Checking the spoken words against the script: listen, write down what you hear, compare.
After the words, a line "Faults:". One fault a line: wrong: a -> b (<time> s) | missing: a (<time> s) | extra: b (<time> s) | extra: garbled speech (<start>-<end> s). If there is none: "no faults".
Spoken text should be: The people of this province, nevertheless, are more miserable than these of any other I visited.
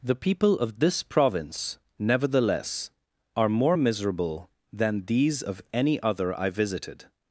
The people of this province, nevertheless, are more miserable than these of any other I visited.
Faults:
no faults